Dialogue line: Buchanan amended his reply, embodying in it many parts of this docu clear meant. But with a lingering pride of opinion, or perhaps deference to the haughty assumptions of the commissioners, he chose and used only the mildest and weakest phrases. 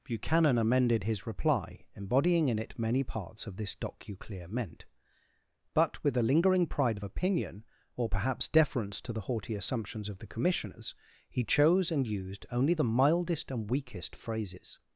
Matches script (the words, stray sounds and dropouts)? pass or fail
pass